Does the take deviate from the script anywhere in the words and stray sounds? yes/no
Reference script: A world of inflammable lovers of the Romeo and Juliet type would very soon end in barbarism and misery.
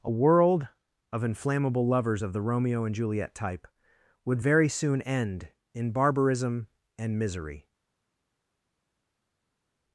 no